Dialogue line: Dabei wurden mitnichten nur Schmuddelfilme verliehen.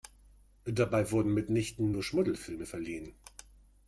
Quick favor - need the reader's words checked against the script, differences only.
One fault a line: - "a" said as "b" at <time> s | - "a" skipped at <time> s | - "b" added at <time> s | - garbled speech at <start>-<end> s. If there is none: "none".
none